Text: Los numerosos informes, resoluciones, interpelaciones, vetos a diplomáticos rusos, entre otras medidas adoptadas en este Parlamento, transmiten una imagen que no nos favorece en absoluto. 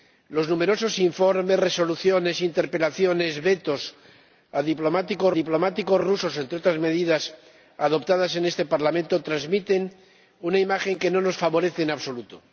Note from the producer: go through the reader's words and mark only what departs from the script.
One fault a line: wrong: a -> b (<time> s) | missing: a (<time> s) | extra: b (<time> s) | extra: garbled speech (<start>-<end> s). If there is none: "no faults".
extra: diplomáticos (5.3 s)